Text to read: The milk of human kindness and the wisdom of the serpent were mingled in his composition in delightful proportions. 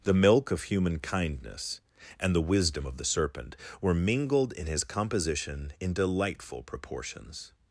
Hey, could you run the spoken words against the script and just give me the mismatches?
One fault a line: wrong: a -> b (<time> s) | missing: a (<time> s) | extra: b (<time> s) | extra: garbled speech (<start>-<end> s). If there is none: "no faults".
no faults